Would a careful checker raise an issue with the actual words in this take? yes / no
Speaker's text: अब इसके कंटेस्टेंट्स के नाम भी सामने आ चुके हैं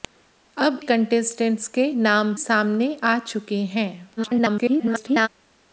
yes